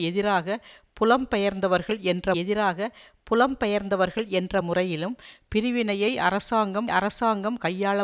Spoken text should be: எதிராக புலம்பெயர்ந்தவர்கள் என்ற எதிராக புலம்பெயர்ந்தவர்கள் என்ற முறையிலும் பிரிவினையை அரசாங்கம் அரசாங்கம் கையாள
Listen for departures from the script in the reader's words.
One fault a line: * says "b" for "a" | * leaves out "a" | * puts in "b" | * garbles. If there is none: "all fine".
all fine